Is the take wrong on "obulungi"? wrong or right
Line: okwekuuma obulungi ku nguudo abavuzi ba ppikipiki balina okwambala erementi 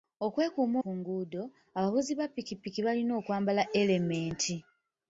wrong